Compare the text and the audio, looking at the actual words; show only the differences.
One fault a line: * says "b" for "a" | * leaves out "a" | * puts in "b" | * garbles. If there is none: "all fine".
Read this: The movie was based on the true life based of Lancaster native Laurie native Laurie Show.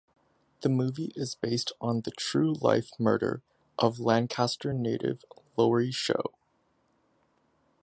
* says "is" for "was"
* says "murder" for "based"
* leaves out "native Laurie"